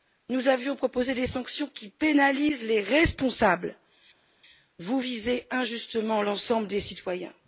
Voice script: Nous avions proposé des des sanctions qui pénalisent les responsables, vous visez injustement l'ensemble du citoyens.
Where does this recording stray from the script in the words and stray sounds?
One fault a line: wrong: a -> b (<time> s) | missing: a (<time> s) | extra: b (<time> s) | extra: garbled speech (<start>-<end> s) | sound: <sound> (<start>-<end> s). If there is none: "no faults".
missing: des (1.3 s)
wrong: du -> des (6.7 s)